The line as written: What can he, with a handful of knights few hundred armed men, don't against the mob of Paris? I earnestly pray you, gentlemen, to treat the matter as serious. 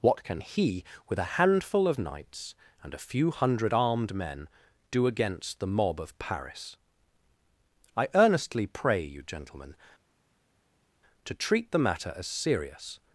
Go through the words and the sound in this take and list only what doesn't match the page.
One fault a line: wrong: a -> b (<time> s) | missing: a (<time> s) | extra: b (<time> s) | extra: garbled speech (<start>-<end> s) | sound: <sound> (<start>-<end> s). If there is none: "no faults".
extra: and a (2.8 s)
wrong: don't -> do (4.9 s)